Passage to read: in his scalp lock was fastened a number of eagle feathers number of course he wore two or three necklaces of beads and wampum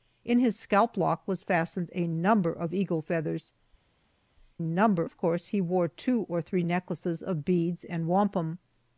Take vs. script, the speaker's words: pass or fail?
pass